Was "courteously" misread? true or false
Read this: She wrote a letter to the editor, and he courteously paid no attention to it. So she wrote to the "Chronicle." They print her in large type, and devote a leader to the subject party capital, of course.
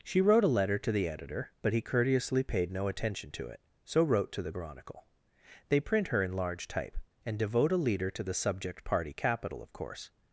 false